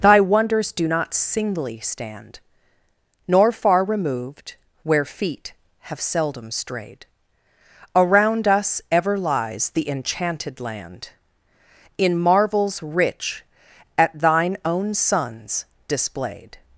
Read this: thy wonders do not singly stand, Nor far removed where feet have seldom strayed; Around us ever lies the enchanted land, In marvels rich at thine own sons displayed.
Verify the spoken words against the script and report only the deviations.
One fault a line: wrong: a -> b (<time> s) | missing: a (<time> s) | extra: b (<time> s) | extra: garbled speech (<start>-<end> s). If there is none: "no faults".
no faults